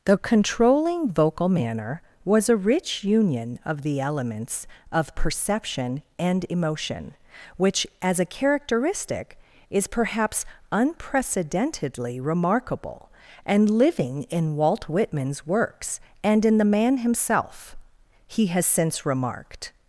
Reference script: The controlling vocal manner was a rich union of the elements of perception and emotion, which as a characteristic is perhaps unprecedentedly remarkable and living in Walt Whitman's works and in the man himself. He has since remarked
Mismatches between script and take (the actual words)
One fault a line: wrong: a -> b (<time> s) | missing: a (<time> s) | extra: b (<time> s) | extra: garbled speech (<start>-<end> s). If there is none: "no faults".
no faults